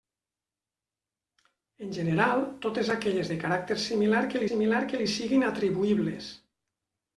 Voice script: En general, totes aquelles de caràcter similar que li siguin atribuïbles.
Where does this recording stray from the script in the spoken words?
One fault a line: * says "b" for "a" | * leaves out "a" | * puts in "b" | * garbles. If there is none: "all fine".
* puts in "similar que"